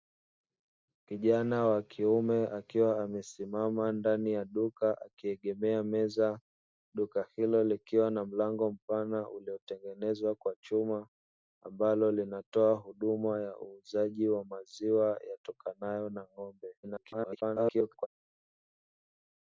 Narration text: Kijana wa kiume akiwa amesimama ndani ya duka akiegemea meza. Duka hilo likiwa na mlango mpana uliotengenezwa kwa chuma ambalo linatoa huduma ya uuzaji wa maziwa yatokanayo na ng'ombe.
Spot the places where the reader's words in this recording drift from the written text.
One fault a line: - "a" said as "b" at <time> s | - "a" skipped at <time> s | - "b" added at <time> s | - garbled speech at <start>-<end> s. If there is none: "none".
- garbled speech at 16.8-18.1 s